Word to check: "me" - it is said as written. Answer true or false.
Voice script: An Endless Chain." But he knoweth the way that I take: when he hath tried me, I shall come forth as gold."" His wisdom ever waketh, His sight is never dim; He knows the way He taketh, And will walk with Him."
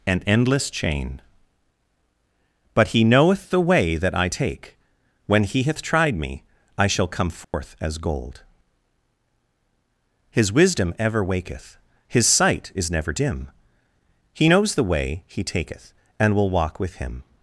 true